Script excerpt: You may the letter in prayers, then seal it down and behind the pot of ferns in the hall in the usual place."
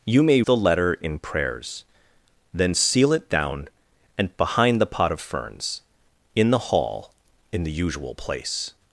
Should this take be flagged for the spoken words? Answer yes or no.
no